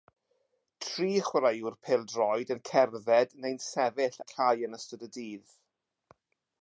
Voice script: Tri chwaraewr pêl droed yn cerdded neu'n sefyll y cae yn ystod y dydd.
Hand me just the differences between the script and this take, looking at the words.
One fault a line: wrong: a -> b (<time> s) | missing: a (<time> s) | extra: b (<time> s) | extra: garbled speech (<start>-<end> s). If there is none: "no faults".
no faults